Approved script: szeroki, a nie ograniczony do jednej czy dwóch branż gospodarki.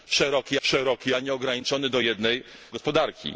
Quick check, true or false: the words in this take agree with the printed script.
false